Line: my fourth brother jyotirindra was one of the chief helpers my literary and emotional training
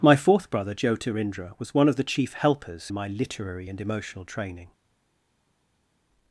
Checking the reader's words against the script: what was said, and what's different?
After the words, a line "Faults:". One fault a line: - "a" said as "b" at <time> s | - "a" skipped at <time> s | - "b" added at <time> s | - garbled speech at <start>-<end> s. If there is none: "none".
my fourth brother jyotirindra was one of the chief helpers my literary and emotional training
Faults:
none